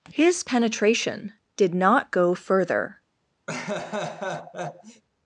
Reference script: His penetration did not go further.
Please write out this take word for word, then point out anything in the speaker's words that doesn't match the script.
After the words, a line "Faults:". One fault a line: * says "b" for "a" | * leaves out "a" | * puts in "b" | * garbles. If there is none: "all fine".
His penetration did not go further.
Faults:
all fine